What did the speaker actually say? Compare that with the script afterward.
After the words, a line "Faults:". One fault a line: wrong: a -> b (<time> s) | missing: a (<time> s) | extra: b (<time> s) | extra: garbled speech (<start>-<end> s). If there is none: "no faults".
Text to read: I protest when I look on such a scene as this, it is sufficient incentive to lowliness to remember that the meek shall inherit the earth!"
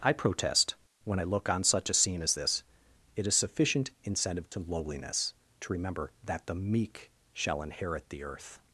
I protest when I look on such a scene as this, it is sufficient incentive to lowliness to remember that the meek shall inherit the earth!"
Faults:
no faults